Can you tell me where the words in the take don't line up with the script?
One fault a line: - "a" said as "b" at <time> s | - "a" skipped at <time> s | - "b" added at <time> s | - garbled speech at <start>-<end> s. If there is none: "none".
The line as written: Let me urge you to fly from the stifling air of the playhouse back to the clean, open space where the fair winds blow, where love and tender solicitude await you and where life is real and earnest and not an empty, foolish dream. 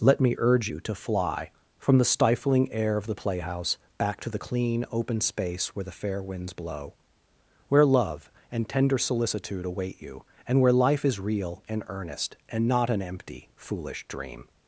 none